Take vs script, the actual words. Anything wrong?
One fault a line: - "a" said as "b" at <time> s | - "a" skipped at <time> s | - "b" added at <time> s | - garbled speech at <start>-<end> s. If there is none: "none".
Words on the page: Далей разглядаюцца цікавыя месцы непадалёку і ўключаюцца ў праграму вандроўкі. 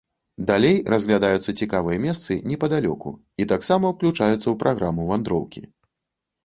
- "таксама" added at 3.6 s